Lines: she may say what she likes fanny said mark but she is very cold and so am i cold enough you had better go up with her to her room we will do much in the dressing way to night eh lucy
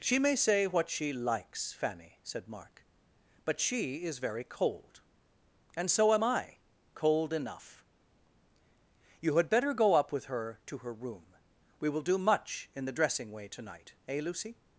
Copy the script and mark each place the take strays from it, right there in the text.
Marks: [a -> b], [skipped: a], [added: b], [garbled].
she may say what she likes fanny said mark but she is very cold and so am i cold enough you had better go up with her to her room we will do much in the dressing way to night eh lucy